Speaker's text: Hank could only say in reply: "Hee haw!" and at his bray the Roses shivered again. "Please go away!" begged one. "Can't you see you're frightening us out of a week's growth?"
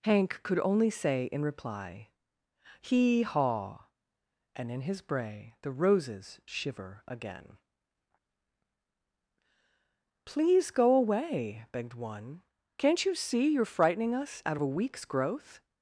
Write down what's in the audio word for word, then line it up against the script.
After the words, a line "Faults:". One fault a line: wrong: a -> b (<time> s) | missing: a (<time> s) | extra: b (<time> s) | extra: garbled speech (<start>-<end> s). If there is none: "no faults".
Hank could only say in reply: "Hee haw!" and in his bray the Roses shiver again. "Please go away!" begged one. "Can't you see you're frightening us out of a week's growth?"
Faults:
wrong: at -> in (4.7 s)
wrong: shivered -> shiver (6.5 s)